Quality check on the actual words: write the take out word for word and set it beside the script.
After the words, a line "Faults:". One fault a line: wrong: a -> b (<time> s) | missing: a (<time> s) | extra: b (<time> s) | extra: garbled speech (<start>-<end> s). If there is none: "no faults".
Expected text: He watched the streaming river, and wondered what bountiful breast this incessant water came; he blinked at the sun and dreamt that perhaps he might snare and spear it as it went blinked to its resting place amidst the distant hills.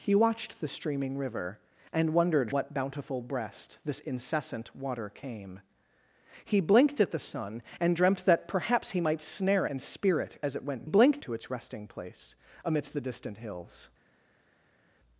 He watched the streaming river, and wondered what bountiful breast this incessant water came; he blinked at the sun and dreamt that perhaps he might snare and spear it as it went blinked to its resting place amidst the distant hills.
Faults:
no faults